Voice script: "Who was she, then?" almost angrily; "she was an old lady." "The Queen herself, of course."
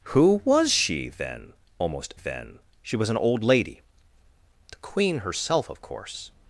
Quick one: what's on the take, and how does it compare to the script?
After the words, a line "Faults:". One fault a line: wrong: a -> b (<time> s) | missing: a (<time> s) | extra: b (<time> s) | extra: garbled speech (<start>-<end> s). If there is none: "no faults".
"Who was she, then?" almost then; "she was an old lady." "The Queen herself, of course."
Faults:
wrong: angrily -> then (2.1 s)